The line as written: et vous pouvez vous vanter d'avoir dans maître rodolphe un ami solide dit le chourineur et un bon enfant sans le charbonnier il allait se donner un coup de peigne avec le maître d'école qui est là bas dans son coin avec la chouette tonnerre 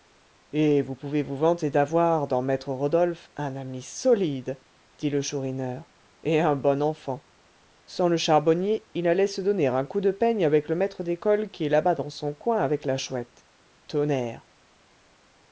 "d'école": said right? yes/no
yes